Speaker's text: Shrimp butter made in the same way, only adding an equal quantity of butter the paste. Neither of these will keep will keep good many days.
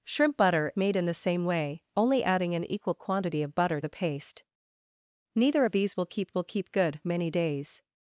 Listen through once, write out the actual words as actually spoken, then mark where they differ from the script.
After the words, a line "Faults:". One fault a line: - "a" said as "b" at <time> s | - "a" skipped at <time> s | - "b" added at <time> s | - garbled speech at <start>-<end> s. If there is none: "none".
Shrimp butter made in the same way, only adding an equal quantity of butter the paste. Neither of these will keep will keep good many days.
Faults:
none